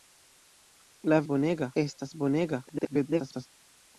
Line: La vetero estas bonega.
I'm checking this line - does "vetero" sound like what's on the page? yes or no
no